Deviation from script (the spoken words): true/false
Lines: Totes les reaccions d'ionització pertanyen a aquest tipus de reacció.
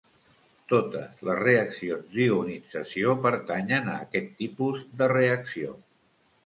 false